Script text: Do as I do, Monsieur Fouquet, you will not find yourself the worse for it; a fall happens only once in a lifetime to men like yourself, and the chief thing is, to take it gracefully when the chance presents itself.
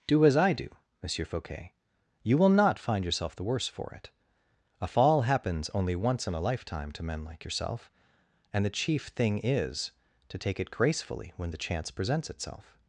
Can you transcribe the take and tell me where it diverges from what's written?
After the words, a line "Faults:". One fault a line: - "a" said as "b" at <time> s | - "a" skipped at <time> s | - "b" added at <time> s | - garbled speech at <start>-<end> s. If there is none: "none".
Do as I do, Monsieur Fouquet, you will not find yourself the worse for it; a fall happens only once in a lifetime to men like yourself, and the chief thing is, to take it gracefully when the chance presents itself.
Faults:
none